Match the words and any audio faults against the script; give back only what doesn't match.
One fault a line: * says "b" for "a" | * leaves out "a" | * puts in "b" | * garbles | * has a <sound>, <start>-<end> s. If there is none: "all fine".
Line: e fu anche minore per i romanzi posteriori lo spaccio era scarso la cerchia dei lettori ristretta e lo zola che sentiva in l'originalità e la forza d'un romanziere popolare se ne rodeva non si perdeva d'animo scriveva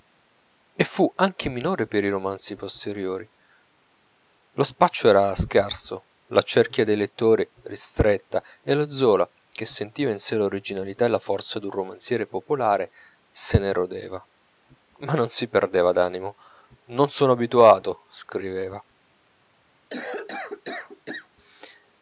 * puts in "sè"
* puts in "ma"
* puts in "non sono abituato"
* has a cough, 19.9-21.3 s